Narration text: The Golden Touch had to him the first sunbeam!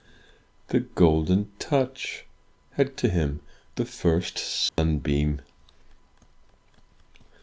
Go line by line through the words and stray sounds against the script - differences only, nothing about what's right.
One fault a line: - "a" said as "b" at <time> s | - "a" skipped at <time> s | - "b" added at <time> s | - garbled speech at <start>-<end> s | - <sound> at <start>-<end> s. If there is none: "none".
- dropout at 4.7-4.8 s